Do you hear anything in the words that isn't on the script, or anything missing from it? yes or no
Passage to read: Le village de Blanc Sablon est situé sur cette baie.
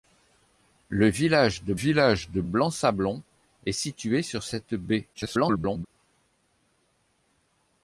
yes